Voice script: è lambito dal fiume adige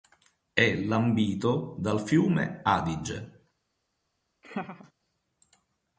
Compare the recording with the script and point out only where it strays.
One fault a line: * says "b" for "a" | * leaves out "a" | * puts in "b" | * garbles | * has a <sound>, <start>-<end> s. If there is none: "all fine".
* has a laugh, 4.4-4.9 s